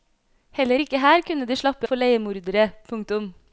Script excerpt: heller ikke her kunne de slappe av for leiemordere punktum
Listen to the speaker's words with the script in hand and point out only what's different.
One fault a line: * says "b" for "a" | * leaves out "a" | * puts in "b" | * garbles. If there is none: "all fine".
* leaves out "av"